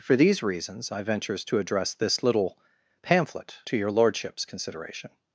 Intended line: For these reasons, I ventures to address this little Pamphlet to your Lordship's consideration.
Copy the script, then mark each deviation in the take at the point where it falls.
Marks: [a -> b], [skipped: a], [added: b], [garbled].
For these reasons, I ventures to address this little Pamphlet to your Lordship's consideration.